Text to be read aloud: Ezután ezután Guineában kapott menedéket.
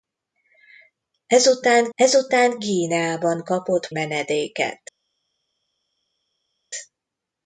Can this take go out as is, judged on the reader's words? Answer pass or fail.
pass